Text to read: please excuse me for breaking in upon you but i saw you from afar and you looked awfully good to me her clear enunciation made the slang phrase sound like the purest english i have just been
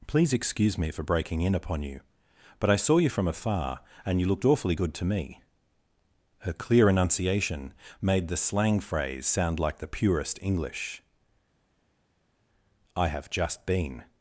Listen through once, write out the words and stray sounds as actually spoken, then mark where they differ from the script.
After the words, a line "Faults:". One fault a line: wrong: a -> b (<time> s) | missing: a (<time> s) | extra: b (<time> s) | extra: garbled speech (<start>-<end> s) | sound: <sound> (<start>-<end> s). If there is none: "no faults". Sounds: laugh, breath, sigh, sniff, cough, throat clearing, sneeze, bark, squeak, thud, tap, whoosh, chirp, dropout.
please excuse me for breaking in upon you but i saw you from afar and you looked awfully good to me her clear enunciation made the slang phrase sound like the purest english i have just been
Faults:
no faults